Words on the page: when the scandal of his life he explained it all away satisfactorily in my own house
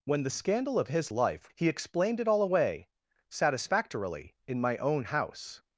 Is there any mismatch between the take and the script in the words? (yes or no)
no